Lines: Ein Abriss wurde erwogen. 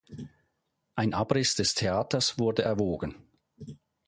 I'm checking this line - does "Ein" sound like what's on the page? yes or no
yes